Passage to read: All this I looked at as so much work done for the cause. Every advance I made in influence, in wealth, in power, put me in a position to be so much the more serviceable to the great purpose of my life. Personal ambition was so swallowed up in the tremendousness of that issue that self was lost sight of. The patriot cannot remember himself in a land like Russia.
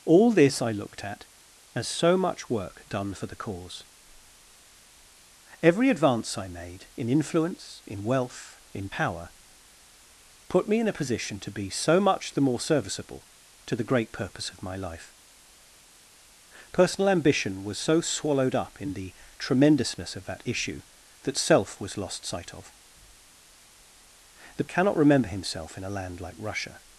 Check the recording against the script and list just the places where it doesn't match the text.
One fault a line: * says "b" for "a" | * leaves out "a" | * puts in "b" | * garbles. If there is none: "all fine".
* leaves out "patriot"